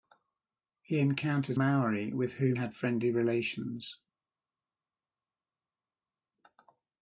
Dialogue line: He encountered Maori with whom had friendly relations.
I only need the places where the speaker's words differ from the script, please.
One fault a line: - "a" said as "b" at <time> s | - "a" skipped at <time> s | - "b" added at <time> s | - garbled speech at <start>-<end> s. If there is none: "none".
none